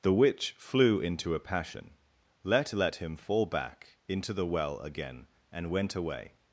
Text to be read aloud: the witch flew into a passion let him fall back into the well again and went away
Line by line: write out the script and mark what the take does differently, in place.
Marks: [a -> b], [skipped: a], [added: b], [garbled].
the witch flew into a passion let [added: let] him fall back into the well again and went away